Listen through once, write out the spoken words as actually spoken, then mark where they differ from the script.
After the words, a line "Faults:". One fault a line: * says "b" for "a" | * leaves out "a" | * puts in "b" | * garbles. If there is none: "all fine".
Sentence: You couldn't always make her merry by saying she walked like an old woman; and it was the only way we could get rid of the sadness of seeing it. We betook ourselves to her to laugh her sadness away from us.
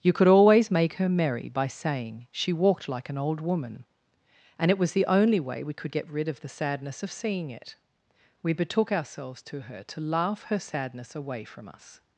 You could always make her merry by saying she walked like an old woman; and it was the only way we could get rid of the sadness of seeing it. We betook ourselves to her to laugh her sadness away from us.
Faults:
* says "could" for "couldn't"